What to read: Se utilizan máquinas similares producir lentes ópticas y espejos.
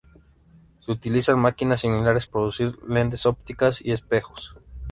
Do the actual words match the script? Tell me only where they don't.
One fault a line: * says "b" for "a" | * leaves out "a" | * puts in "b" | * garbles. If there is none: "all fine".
all fine